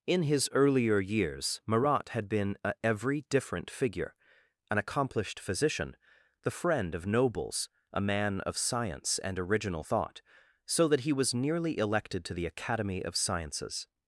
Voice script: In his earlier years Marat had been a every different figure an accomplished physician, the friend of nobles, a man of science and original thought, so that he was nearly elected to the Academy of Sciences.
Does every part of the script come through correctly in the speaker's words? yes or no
yes